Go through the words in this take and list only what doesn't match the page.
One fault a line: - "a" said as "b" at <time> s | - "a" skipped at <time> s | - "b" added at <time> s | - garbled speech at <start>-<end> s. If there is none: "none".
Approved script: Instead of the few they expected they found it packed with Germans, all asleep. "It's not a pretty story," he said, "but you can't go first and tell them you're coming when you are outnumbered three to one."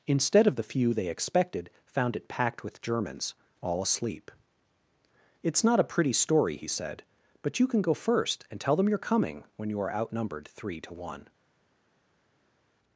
- "they" skipped at 1.7 s
- "can't" said as "can" at 7.7 s